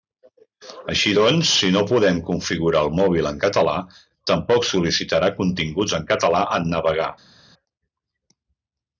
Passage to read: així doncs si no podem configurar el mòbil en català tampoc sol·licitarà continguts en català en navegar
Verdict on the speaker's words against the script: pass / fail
pass